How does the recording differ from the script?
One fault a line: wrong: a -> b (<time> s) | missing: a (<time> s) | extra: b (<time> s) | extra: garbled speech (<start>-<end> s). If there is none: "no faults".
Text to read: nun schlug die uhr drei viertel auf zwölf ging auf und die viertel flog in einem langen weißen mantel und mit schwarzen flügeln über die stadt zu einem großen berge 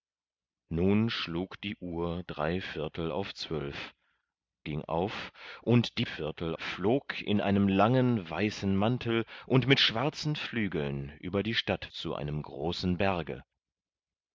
no faults